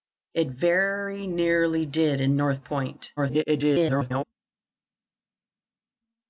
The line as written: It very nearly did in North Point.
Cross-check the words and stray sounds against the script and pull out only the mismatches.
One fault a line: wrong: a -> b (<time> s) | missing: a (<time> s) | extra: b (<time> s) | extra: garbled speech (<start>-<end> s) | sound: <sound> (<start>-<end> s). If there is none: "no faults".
extra: garbled speech (3.2-4.2 s)